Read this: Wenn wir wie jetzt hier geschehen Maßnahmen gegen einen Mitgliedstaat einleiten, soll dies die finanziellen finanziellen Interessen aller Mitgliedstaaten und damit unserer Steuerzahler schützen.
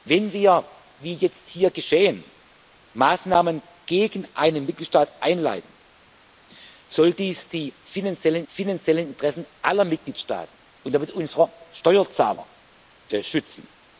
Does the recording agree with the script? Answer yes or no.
yes